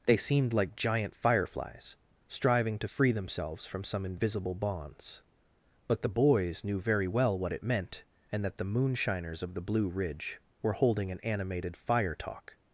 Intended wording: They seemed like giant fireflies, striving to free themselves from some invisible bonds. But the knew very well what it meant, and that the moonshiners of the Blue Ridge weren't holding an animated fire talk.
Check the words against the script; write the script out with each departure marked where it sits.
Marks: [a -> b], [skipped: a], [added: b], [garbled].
They seemed like giant fireflies, striving to free themselves from some invisible bonds. But the [added: boys] knew very well what it meant, and that the moonshiners of the Blue Ridge [weren't -> were] holding an animated fire talk.